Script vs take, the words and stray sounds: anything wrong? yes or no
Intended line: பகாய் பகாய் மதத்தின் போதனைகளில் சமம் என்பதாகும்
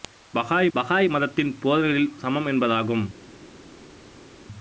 no